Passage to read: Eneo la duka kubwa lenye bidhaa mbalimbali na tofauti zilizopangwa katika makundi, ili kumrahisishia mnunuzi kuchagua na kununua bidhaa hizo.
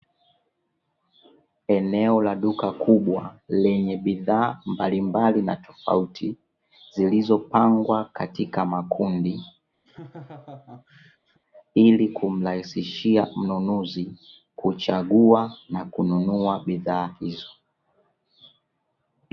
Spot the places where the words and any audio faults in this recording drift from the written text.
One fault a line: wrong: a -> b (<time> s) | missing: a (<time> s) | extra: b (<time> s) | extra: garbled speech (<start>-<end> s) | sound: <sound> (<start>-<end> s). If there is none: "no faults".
sound: laugh (9.8-11.4 s)